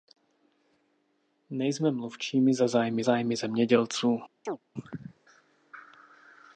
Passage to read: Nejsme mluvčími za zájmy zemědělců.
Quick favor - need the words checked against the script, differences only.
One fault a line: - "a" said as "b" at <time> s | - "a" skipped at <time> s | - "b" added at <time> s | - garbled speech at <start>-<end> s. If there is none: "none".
- "zájmy" added at 3.0 s